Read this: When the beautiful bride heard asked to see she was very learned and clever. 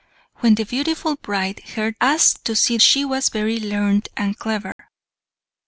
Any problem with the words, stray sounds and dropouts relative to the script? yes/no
yes